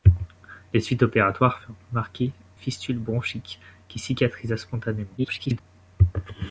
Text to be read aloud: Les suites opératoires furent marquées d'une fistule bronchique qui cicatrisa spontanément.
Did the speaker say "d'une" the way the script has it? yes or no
no